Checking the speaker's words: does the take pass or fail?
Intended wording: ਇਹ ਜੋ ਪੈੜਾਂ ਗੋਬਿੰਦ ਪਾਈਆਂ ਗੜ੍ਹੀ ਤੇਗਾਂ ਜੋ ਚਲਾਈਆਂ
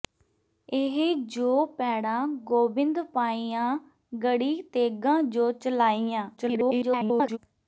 fail